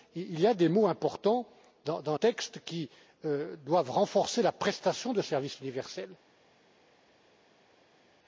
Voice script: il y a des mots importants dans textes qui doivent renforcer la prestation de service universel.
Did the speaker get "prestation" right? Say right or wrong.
right